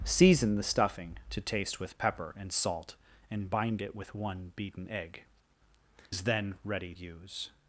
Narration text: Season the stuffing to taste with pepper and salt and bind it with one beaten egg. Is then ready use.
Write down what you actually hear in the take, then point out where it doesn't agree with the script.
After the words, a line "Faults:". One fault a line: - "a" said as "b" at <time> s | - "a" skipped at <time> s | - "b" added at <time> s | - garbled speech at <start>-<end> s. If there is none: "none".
Season the stuffing to taste with pepper and salt and bind it with one beaten egg. Is then ready use.
Faults:
none